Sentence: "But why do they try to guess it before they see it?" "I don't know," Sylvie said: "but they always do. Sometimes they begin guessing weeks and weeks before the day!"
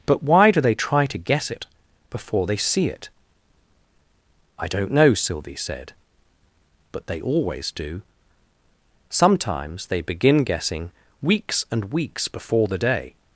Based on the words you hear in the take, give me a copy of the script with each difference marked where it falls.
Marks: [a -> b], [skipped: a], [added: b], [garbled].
"But why do they try to guess it before they see it?" "I don't know," Sylvie said: "but they always do. Sometimes they begin guessing weeks and weeks before the day!"